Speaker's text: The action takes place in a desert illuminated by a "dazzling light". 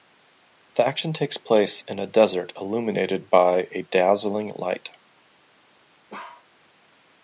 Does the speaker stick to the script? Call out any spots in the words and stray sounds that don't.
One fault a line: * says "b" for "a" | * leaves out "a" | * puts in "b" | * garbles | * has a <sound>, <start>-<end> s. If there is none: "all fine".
* has a bark, 6.1-6.5 s